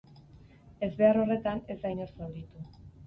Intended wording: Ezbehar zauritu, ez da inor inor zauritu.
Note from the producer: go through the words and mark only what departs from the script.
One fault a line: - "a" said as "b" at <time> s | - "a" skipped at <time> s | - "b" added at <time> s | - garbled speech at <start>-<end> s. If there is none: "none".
- "zauritu" said as "horretan" at 1.2 s
- "inor" skipped at 2.1 s